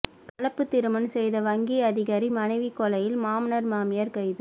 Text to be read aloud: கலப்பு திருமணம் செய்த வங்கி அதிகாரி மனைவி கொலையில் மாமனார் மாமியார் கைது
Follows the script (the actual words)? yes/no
yes